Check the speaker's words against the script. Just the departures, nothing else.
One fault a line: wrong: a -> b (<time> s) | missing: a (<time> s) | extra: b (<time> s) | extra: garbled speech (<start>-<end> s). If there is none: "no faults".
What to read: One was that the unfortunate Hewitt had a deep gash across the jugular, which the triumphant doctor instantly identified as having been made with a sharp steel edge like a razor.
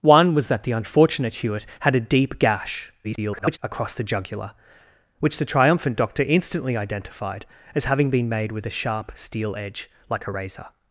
extra: garbled speech (3.0-3.6 s)